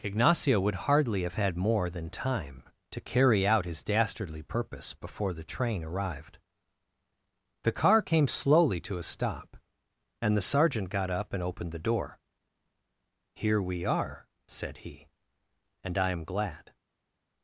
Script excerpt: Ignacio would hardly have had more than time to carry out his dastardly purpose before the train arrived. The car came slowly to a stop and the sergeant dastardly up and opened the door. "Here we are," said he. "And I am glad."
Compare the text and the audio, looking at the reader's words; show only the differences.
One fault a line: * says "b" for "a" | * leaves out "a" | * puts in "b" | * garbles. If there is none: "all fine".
* says "got" for "dastardly"